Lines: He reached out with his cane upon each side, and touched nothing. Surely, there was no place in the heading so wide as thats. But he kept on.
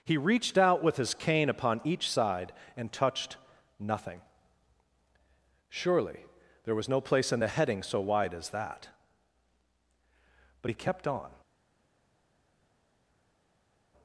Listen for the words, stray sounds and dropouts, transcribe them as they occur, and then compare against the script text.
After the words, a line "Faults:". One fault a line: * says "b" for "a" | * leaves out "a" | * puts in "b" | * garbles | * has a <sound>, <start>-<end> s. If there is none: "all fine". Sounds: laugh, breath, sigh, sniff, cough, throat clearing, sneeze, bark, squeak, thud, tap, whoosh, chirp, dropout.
He reached out with his cane upon each side, and touched nothing. Surely, there was no place in the heading so wide as that. But he kept on.
Faults:
* says "that" for "thats"